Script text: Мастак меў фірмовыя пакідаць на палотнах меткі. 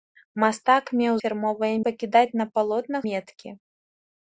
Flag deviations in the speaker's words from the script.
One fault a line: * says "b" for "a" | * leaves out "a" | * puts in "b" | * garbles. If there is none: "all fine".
all fine